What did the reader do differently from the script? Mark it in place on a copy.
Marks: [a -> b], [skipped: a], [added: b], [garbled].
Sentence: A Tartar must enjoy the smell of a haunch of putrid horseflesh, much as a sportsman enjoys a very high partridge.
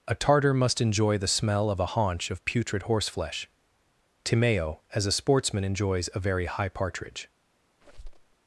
A Tartar must enjoy the smell of a haunch of putrid horseflesh, [much -> timeo] as a sportsman enjoys a very high partridge.